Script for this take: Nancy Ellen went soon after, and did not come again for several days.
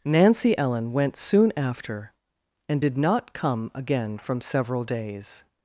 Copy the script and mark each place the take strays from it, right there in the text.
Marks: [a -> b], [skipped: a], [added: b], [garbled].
Nancy Ellen went soon after, and did not come again [for -> from] several days.